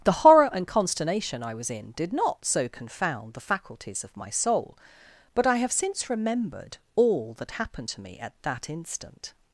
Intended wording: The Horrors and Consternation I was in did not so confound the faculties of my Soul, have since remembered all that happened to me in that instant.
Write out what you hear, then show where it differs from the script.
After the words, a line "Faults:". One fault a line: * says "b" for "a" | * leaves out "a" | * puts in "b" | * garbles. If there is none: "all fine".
The Horror and Consternation I was in did not so confound the faculties of my Soul, but I have since remembered all that happened to me at that instant.
Faults:
* says "Horror" for "Horrors"
* puts in "but I"
* says "at" for "in"